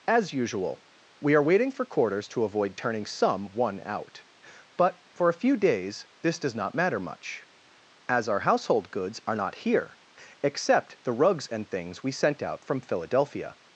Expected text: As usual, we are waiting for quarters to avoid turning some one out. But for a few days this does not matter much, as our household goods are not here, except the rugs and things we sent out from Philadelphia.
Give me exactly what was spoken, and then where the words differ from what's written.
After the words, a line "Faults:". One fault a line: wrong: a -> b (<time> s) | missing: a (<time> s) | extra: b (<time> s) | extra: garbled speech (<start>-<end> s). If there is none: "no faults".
As usual, we are waiting for quarters to avoid turning some one out. But for a few days this does not matter much, as our household goods are not here, except the rugs and things we sent out from Philadelphia.
Faults:
no faults